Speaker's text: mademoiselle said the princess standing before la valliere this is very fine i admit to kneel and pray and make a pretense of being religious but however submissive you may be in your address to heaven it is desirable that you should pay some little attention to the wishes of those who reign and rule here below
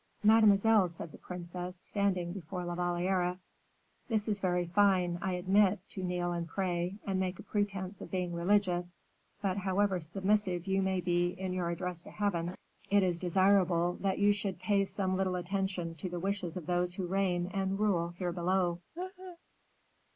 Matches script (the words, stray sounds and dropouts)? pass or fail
fail